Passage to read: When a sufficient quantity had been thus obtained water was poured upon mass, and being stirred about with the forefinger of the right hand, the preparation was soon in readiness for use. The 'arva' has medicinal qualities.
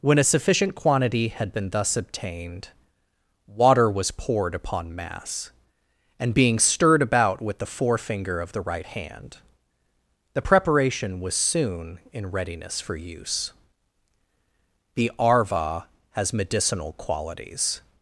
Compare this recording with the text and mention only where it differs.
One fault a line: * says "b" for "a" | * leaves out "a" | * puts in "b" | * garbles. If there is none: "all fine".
all fine